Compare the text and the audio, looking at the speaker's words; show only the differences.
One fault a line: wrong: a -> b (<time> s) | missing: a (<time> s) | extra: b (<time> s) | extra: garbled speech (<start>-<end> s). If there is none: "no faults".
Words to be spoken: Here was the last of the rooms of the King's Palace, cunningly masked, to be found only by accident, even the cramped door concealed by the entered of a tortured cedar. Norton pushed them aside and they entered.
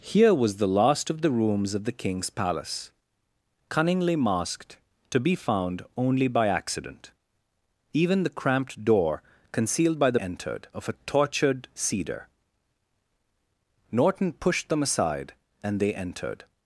no faults